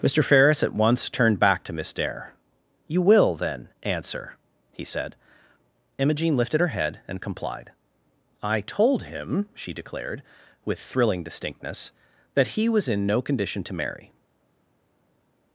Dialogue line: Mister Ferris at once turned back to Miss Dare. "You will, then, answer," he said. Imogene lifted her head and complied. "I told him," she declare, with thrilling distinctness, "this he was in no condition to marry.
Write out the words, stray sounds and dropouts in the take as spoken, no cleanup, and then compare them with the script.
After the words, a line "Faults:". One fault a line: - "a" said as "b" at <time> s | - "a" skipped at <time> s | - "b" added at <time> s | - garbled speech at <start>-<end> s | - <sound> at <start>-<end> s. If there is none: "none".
Mister Ferris at once turned back to Miss Dare. "You will, then, answer," he said. Imogene lifted her head and complied. "I told him," she declared, with thrilling distinctness, "that he was in no condition to marry.
Faults:
- "declare" said as "declared" at 9.7 s
- "this" said as "that" at 12.3 s